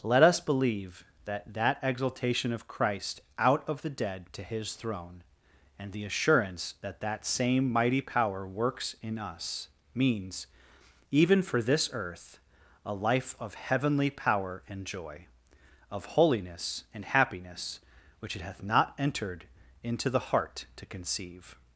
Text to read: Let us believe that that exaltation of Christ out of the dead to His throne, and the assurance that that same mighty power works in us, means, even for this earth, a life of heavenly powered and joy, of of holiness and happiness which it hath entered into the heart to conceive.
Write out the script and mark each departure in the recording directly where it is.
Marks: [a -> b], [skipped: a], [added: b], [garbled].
Let us believe that that exaltation of Christ out of the dead to His throne, and the assurance that that same mighty power works in us, means, even for this earth, a life of heavenly [powered -> power] and joy, of [skipped: of] holiness and happiness which it hath [added: not] entered into the heart to conceive.